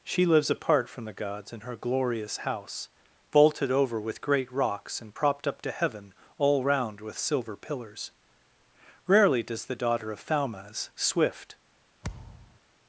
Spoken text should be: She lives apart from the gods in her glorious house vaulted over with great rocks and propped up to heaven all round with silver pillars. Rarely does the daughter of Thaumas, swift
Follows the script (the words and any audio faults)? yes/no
no